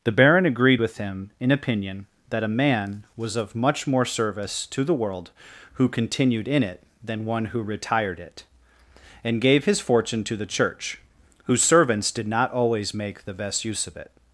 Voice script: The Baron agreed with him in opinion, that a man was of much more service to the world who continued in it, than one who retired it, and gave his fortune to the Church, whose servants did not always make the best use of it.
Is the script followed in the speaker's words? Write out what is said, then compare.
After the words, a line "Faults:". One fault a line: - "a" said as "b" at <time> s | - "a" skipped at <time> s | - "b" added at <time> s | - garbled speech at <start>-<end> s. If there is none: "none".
The Baron agreed with him in opinion, that a man was of much more service to the world who continued in it, than one who retired it, and gave his fortune to the Church, whose servants did not always make the best use of it.
Faults:
none